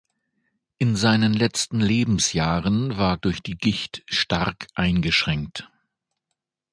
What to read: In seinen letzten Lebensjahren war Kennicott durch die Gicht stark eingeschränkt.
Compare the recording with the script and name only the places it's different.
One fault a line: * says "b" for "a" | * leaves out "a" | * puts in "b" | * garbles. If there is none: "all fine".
* leaves out "Kennicott"